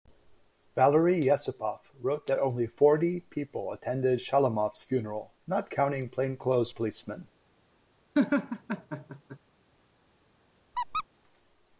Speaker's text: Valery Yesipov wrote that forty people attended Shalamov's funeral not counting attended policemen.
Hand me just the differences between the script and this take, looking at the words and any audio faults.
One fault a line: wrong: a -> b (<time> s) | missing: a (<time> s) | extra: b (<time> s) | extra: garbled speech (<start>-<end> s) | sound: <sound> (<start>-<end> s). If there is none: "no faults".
extra: only (2.4 s)
wrong: attended -> plainclothes (6.1 s)
sound: laugh (8.1-9.4 s)
sound: squeak (10.7-11.0 s)